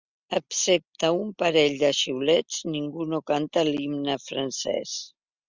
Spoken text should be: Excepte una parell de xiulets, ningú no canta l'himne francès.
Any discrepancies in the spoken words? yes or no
yes